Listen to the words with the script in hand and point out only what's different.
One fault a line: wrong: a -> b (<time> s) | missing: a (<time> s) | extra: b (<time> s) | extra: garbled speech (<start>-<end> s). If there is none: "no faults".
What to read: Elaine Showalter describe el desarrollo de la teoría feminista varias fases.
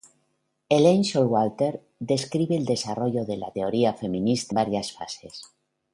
no faults